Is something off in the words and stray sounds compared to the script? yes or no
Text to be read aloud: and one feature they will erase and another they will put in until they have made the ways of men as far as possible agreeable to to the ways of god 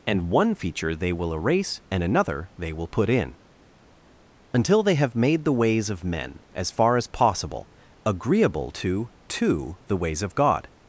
no